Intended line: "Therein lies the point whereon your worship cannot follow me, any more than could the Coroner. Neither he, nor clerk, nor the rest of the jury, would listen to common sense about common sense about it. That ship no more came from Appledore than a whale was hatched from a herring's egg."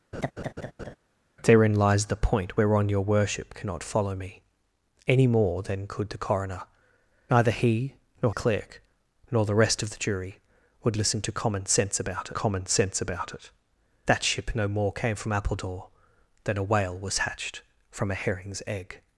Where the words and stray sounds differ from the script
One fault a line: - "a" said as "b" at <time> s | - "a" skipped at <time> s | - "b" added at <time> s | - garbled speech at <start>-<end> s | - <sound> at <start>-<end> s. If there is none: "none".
- laugh at 0.1-1.0 s